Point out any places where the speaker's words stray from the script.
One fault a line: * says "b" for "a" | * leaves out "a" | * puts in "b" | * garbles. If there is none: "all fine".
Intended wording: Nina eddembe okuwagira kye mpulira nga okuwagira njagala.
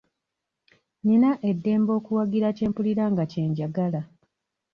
* says "kye" for "okuwagira"